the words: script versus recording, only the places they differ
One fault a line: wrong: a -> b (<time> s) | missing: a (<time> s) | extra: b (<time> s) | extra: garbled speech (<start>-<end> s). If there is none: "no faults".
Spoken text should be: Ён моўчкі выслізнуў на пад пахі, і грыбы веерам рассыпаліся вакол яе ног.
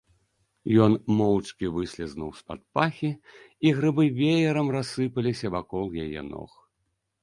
wrong: на -> з (2.4 s)